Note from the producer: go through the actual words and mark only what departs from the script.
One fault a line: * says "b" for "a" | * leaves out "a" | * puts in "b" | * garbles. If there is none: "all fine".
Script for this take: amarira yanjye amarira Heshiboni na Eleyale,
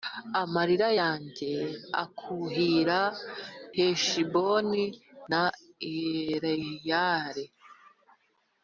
* says "akuhira" for "amarira"